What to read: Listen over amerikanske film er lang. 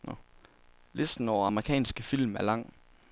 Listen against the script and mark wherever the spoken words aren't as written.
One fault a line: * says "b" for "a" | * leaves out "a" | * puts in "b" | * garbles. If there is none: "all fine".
all fine